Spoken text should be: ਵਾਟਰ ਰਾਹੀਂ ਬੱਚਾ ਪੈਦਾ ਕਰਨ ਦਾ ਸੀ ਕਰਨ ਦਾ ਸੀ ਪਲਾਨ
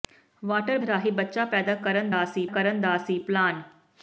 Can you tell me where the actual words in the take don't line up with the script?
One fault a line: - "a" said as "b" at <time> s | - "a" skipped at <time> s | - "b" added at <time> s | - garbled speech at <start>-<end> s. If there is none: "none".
none